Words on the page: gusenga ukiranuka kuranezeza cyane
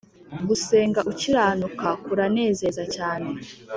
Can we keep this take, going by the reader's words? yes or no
yes